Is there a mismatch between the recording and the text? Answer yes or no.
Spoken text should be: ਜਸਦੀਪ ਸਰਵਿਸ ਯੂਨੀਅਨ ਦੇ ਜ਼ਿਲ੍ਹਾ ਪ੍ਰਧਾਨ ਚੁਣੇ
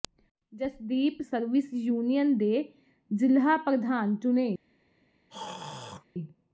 no